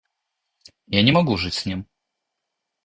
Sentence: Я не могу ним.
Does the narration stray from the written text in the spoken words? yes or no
yes